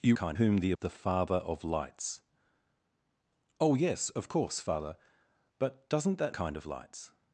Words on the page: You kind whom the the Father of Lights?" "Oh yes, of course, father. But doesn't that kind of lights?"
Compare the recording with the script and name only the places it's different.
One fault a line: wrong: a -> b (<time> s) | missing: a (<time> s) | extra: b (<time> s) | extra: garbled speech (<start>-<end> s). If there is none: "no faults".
no faults